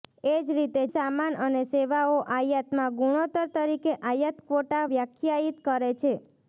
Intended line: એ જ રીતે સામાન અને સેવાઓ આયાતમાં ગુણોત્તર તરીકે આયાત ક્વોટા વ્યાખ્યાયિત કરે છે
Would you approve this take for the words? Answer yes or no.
yes